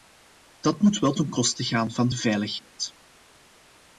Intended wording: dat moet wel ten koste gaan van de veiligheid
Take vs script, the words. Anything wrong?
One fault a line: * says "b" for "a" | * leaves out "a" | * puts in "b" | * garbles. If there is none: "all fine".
all fine